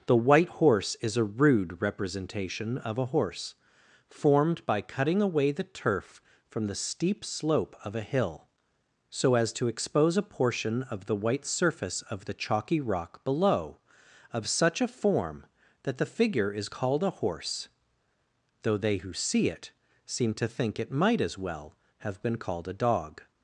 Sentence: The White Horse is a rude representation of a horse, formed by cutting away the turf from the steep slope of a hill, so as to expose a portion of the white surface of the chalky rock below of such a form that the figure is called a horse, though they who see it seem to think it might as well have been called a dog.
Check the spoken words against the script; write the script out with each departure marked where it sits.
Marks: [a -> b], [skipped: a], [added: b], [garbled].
The White Horse is a rude representation of a horse, formed by cutting away the turf from the steep slope of a hill, so as to expose a portion of the white surface of the chalky rock below of such a form that the figure is called a horse, though they who see it seem to think it might as well have been called a dog.